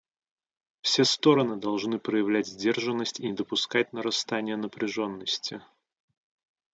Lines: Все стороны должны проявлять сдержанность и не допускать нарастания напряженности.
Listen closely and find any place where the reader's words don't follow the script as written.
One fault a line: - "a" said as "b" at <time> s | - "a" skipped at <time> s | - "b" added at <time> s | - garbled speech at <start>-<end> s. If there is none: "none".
none